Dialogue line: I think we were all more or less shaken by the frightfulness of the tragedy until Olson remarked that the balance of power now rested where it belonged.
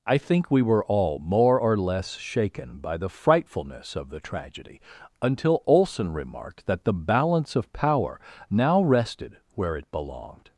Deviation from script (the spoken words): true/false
false